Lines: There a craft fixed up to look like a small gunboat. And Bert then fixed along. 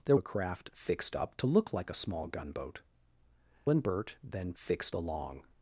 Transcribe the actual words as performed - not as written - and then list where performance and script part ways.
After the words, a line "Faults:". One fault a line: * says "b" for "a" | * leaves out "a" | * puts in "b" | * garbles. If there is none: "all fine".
There a craft fixed up to look like a small gunboat. And Bert then fixed along.
Faults:
all fine